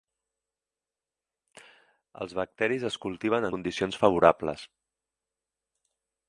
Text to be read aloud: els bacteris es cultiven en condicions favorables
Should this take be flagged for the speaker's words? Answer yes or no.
yes